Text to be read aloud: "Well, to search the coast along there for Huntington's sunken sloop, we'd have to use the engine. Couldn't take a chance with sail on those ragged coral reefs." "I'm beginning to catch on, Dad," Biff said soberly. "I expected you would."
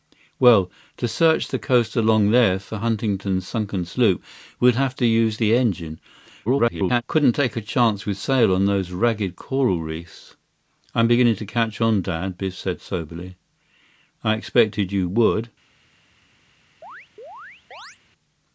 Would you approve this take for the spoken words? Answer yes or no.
no